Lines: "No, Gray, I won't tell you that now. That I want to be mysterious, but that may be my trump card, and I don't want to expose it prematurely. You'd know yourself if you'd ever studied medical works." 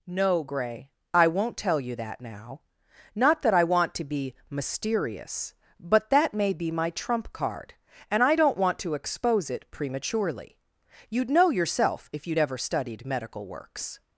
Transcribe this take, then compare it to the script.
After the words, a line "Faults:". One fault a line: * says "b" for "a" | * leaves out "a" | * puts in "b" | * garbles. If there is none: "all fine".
"No, Gray, I won't tell you that now. Not that I want to be mysterious, but that may be my trump card, and I don't want to expose it prematurely. You'd know yourself if you'd ever studied medical works."
Faults:
* puts in "Not"